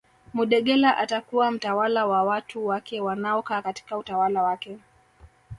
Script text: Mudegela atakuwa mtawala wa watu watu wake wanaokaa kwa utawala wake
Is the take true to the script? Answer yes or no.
no